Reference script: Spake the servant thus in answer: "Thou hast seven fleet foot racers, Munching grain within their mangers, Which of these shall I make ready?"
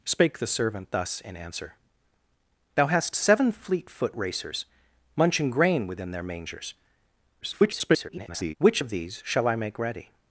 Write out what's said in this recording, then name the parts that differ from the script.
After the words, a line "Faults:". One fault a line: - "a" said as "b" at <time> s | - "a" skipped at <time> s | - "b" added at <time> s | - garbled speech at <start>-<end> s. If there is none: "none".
Spake the servant thus in answer: "Thou hast seven fleet foot racers, Munching grain within their mangers, [garbled] Which of these shall I make ready?"
Faults:
- garbled speech at 7.4-8.5 s